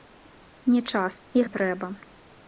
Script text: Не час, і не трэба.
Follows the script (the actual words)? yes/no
yes